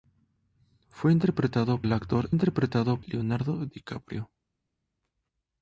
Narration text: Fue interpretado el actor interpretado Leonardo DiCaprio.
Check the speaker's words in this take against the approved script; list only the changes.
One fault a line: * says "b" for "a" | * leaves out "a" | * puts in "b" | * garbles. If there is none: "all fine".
all fine